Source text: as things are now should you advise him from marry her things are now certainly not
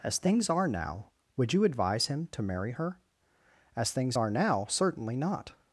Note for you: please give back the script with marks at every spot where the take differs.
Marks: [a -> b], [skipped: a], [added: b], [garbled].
as things are now [should -> would] you advise him [from -> to] marry her [added: as] things are now certainly not